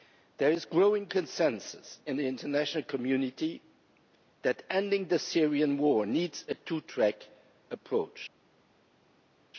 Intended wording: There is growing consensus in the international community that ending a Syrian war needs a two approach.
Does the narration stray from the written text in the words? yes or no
yes